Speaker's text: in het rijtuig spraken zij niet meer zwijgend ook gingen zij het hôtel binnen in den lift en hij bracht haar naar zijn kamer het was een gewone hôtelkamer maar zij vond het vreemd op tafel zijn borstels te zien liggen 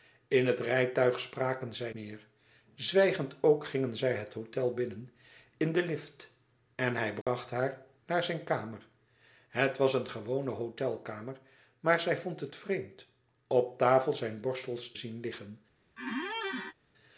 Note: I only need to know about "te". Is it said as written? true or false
false